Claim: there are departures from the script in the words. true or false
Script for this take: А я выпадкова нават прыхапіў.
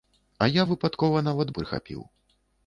false